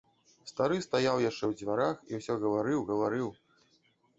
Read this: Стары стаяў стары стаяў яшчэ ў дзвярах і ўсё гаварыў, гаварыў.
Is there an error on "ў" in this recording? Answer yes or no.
no